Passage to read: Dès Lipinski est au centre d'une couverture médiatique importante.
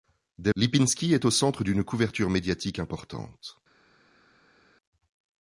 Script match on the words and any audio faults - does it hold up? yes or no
yes